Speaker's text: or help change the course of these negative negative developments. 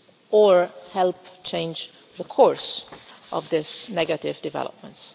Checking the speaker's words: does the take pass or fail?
fail